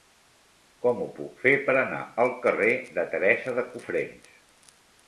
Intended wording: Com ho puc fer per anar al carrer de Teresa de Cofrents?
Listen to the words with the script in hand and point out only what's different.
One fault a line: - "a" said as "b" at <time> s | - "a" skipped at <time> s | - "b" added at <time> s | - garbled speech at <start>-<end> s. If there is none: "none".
none